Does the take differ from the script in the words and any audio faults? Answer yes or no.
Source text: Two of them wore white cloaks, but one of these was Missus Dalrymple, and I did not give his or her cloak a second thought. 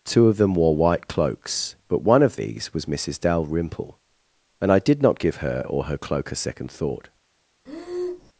yes